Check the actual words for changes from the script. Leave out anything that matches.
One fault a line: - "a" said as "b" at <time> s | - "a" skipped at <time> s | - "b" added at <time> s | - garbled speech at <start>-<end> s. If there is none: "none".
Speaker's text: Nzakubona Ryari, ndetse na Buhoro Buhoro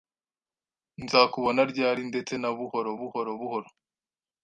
- "Buhoro" added at 3.4 s